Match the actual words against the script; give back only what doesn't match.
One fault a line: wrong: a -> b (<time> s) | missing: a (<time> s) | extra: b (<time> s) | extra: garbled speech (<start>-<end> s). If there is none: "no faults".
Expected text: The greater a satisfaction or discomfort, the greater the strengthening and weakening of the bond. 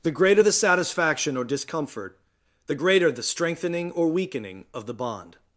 wrong: a -> the (0.4 s)
wrong: and -> or (3.9 s)